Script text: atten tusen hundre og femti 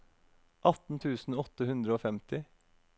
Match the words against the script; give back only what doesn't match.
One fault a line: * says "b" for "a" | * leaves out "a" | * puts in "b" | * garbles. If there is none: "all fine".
* puts in "åtte"